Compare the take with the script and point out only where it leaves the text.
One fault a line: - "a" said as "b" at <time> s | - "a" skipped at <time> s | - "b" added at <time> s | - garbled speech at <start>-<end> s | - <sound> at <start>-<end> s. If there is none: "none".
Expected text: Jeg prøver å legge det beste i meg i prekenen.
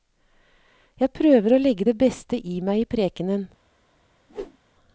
- whoosh at 4.3-4.6 s